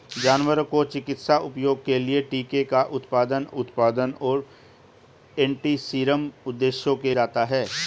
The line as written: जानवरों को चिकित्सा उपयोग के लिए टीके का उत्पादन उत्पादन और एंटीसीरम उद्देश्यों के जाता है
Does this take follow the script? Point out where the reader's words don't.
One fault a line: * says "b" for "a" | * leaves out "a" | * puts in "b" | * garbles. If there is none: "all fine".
all fine